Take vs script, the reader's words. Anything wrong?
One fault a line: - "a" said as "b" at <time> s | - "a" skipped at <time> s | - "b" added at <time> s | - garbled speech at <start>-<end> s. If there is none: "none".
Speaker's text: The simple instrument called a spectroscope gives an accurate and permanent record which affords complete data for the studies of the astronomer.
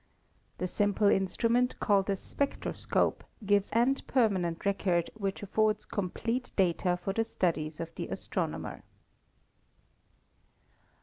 - "an accurate" skipped at 3.7 s